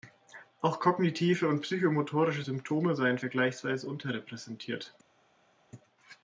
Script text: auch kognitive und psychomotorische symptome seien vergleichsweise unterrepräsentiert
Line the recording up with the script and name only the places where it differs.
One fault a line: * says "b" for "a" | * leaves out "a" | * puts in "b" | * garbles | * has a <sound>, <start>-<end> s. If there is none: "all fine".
all fine